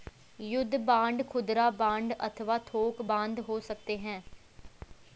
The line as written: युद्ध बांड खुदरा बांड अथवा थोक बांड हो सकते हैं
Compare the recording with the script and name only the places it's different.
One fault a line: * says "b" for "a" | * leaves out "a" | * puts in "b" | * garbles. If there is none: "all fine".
all fine